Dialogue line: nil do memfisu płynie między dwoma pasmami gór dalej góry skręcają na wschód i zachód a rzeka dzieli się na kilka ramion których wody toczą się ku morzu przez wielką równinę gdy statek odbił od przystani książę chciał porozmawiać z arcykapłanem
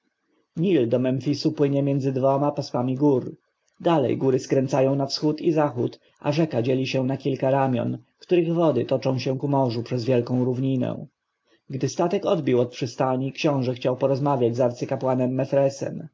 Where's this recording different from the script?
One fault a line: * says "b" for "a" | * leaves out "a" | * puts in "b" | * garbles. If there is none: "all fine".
all fine